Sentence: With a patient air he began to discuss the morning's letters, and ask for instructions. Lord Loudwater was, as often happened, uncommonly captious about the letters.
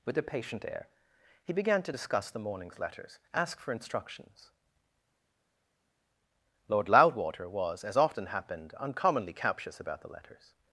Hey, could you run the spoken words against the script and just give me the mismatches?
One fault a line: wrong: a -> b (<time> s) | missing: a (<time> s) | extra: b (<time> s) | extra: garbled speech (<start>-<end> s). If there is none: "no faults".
missing: and (3.2 s)